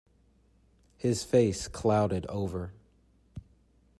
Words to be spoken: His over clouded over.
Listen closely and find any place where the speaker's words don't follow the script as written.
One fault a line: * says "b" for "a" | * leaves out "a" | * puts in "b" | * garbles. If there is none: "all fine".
* says "face" for "over"